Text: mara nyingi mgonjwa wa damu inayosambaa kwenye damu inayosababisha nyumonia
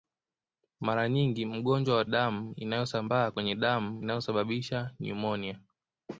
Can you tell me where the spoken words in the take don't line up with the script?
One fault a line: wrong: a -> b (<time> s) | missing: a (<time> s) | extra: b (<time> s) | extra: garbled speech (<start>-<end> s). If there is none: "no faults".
no faults